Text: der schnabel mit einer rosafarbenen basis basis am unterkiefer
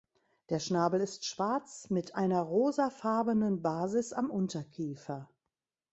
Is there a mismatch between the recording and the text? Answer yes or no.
yes